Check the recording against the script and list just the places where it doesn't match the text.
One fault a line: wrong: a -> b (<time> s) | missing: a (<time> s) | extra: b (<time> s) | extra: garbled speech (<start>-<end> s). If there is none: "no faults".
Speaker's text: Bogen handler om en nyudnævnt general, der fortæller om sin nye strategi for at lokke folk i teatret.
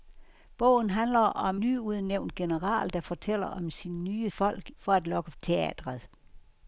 missing: en (1.6 s)
wrong: strategi -> folk (4.3 s)
missing: folk i (5.3 s)